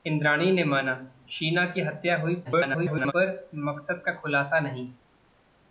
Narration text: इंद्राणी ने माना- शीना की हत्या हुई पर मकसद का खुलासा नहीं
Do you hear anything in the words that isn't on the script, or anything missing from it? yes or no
yes